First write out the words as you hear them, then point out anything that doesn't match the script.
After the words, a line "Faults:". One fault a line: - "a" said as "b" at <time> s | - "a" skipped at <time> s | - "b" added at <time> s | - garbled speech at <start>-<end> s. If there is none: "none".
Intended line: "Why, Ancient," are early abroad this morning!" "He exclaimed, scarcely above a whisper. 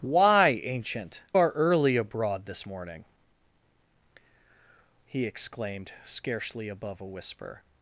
"Why, Ancient," are early abroad this morning!" "He exclaimed, scarcely above a whisper.
Faults:
none